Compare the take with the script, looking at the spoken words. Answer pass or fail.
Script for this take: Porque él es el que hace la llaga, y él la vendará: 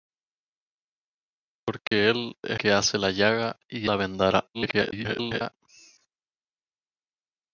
fail